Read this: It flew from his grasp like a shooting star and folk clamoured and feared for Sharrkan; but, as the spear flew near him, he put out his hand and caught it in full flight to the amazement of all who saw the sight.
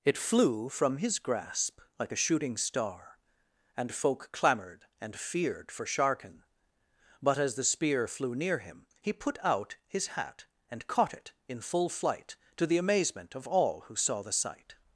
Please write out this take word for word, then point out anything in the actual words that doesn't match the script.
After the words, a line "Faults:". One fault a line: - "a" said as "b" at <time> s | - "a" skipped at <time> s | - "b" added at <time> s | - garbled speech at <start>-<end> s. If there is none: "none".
It flew from his grasp like a shooting star and folk clamoured and feared for Sharrkan; but, as the spear flew near him, he put out his hat and caught it in full flight to the amazement of all who saw the sight.
Faults:
- "hand" said as "hat" at 10.1 s